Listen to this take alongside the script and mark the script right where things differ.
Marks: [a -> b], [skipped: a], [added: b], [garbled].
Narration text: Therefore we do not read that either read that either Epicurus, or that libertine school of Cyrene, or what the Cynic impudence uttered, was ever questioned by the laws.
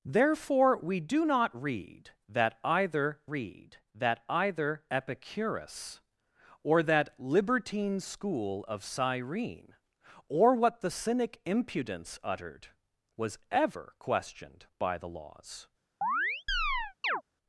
Therefore we do not read that either read that either Epicurus, or that libertine school of Cyrene, or what the Cynic impudence uttered, was ever questioned by the laws.